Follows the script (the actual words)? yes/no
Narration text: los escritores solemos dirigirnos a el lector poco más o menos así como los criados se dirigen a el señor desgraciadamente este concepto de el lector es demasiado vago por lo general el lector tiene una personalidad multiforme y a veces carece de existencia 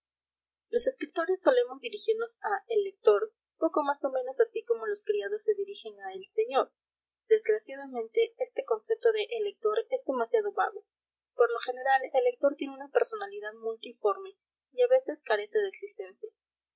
yes